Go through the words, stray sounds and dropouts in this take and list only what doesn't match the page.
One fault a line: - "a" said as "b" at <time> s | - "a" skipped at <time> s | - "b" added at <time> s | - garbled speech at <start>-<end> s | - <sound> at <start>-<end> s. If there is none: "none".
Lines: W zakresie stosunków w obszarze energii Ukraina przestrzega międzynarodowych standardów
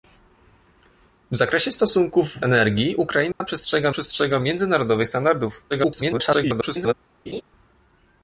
- "obszarze" skipped at 2.5 s
- dropout at 3.3-3.4 s
- "przestrzega" added at 3.9 s
- garbled speech at 5.7-6.9 s
- laugh at 7.3-7.4 s